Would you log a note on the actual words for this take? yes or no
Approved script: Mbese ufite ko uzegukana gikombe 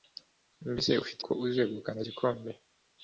no